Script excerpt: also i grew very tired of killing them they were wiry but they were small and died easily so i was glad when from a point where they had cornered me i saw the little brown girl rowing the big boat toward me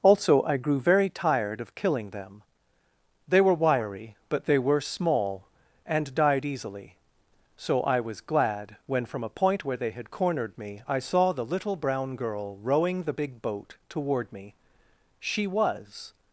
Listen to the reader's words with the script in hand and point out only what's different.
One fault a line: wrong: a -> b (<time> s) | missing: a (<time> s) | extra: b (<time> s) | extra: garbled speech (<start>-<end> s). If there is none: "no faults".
extra: she was (15.2 s)